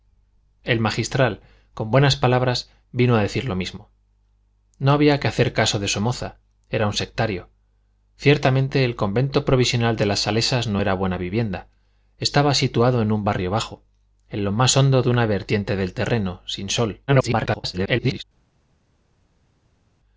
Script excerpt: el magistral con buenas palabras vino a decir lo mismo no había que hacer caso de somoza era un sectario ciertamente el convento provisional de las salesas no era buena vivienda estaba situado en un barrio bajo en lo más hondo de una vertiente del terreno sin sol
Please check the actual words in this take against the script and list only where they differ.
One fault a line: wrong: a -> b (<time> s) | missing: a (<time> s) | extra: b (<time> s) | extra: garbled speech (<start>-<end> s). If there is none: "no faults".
extra: garbled speech (17.1-18.2 s)